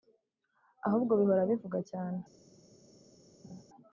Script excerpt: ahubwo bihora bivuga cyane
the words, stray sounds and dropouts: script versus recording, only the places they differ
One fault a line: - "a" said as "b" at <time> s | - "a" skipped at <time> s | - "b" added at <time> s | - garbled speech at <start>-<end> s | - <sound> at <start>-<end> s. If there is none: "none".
- laugh at 3.4-3.6 s